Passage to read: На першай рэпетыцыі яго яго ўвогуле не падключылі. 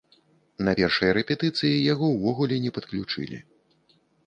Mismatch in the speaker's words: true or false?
true